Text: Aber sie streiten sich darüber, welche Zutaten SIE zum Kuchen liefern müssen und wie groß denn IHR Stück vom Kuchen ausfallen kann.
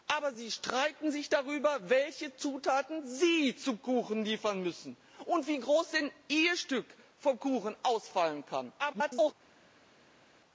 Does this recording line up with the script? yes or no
no